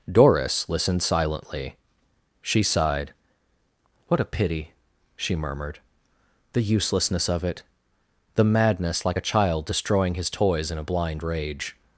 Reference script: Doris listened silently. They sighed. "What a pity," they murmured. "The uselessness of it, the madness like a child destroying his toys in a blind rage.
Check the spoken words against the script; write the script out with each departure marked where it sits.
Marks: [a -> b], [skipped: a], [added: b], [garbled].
Doris listened silently. [They -> She] sighed. "What a pity," [they -> she] murmured. "The uselessness of it, the madness like a child destroying his toys in a blind rage.